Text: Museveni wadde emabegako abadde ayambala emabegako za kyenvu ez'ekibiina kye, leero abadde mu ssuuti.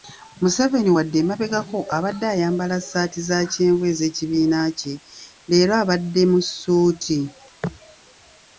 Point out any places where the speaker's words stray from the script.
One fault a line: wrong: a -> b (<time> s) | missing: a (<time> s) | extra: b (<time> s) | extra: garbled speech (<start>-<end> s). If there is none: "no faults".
wrong: emabegako -> ssaati (2.8 s)